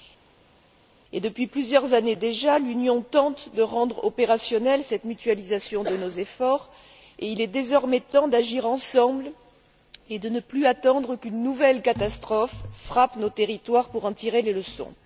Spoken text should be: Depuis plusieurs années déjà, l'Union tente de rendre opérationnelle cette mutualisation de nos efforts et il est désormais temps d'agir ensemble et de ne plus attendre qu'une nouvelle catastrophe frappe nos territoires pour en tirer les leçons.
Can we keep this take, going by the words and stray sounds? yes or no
yes